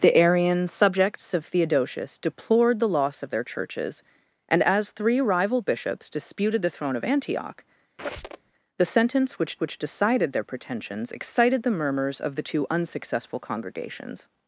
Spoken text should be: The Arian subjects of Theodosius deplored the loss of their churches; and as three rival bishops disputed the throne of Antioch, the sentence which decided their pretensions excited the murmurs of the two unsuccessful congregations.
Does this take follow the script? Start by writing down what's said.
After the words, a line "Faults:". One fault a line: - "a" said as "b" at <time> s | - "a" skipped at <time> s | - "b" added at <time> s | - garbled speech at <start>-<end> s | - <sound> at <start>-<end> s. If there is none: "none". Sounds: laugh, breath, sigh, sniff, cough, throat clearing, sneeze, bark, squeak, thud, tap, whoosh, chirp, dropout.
The Arian subjects of Theodosius deplored the loss of their churches; and as three rival bishops disputed the throne of Antioch, the sentence which which decided their pretensions excited the murmurs of the two unsuccessful congregations.
Faults:
- squeak at 8.0-8.5 s
- "which" added at 9.6 s